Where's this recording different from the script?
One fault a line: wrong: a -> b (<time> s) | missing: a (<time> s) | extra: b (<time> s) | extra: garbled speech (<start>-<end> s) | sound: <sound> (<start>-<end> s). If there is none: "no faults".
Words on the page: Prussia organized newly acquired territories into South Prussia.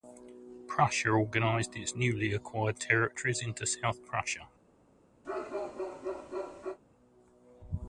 extra: its (1.8 s)
sound: bark (5.2-6.8 s)